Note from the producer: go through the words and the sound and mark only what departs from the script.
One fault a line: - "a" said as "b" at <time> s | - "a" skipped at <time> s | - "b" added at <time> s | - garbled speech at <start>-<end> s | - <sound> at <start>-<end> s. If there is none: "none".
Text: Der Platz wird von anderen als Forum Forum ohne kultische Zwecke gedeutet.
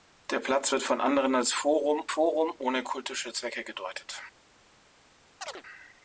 - chirp at 5.4-5.6 s